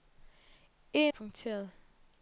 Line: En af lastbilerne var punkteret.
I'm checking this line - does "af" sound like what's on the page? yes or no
no